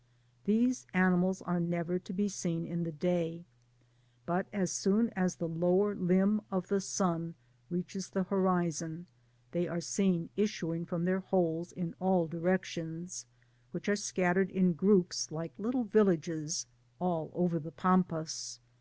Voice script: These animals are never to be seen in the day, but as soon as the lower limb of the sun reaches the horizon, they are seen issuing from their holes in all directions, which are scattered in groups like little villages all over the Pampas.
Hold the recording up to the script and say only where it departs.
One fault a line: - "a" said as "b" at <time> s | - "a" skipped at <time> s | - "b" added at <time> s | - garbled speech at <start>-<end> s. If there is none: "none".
none